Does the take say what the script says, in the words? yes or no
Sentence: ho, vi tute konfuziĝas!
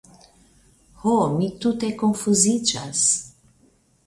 no